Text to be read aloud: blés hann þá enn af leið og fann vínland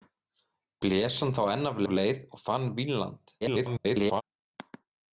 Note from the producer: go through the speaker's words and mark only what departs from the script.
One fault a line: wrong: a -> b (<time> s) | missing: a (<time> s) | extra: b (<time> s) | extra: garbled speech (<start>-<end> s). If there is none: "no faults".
extra: af (1.8 s)
extra: garbled speech (3.4-4.2 s)